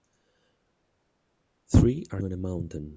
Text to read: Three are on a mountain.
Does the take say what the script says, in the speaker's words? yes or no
yes